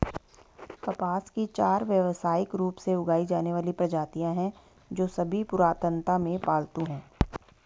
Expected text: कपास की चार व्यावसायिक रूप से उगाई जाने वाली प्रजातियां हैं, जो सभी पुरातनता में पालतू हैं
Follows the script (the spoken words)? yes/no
yes